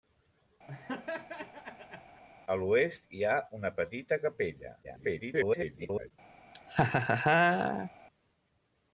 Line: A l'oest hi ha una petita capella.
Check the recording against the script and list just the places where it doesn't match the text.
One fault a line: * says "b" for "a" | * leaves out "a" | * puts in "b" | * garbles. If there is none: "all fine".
* garbles